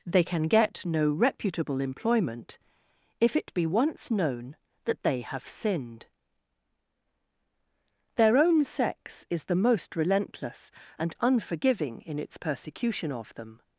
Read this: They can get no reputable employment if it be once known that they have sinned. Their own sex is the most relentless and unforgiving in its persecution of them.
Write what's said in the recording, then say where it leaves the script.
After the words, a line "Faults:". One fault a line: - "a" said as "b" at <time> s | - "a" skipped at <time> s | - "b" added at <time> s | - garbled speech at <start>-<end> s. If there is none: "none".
They can get no reputable employment if it be once known that they have sinned. Their own sex is the most relentless and unforgiving in its persecution of them.
Faults:
none